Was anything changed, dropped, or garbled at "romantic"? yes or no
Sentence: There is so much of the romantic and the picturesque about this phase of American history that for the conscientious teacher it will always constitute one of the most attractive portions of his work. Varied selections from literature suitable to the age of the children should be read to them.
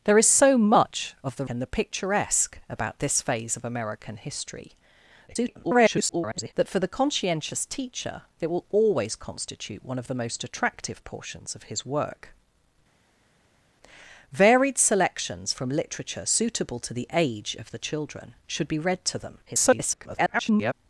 yes